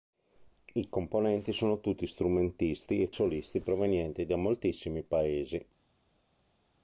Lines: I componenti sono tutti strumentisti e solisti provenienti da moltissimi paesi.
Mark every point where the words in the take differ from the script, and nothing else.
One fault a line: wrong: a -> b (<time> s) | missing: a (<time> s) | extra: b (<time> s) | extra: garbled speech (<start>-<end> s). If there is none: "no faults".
no faults